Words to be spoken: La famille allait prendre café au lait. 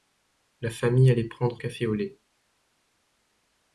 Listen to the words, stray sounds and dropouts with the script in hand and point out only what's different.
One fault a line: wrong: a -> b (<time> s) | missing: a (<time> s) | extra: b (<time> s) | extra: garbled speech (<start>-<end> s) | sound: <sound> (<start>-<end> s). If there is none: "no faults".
no faults